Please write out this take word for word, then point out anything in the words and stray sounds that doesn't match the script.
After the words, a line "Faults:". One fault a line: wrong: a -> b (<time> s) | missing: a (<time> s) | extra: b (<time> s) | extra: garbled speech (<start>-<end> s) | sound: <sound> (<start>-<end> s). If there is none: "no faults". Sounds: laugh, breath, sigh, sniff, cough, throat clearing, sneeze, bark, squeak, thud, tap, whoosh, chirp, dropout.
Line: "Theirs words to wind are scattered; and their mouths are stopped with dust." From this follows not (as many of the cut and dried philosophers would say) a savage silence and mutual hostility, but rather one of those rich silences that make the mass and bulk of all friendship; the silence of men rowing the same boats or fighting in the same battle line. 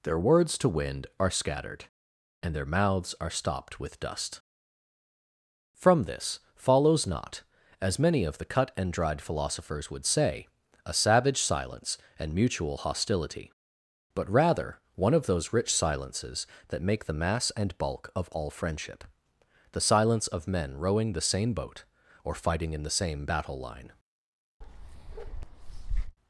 "Their words to wind are scattered; and their mouths are stopped with dust." From this follows not (as many of the cut and dried philosophers would say) a savage silence and mutual hostility, but rather one of those rich silences that make the mass and bulk of all friendship; the silence of men rowing the same boat or fighting in the same battle line.
Faults:
wrong: Theirs -> Their (0.0 s)
wrong: boats -> boat (21.5 s)
sound: bark (24.6-26.2 s)